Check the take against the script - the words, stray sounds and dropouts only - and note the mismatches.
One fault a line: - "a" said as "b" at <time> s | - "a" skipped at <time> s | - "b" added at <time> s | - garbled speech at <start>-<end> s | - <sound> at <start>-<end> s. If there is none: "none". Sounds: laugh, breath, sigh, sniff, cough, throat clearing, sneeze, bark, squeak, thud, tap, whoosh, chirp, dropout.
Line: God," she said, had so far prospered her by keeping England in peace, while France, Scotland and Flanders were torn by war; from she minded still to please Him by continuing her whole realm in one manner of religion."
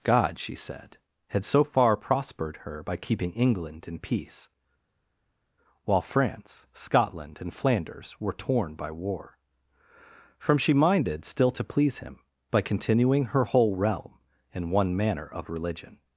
none